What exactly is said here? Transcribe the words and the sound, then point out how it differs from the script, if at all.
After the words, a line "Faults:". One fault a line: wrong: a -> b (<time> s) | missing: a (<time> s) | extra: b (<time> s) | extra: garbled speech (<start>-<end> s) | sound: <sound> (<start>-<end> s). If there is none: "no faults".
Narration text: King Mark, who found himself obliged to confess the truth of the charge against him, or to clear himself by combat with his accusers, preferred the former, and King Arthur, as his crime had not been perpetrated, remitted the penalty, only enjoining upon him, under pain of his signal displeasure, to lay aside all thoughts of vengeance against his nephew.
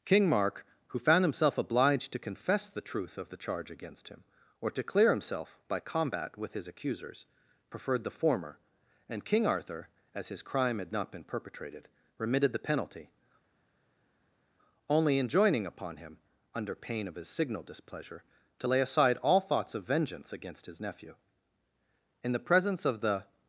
King Mark, who found himself obliged to confess the truth of the charge against him, or to clear himself by combat with his accusers, preferred the former, and King Arthur, as his crime had not been perpetrated, remitted the penalty, only enjoining upon him, under pain of his signal displeasure, to lay aside all thoughts of vengeance against his nephew. In the presence of the
Faults:
extra: In the presence of the (22.2 s)